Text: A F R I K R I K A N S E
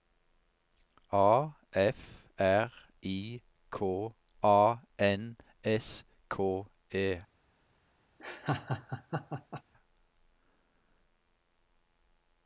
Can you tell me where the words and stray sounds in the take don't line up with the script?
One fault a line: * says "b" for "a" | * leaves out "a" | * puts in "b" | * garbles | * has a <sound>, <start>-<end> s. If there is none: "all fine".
* leaves out "R I K"
* puts in "K"
* has a laugh, 8.2-9.6 s